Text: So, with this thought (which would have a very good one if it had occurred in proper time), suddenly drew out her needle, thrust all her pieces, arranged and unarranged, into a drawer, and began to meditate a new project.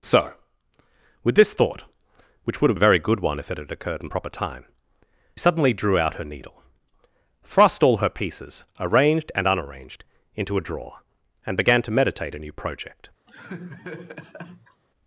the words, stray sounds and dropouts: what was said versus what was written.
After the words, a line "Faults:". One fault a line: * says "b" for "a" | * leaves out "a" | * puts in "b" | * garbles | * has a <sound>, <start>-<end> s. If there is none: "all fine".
So, with this thought (which would have a very good one if it had occurred in proper time), suddenly drew out her needle, thrust all her pieces, arranged and unarranged, into a drawer, and began to meditate a new project.
Faults:
* has a laugh, 13.3-14.8 s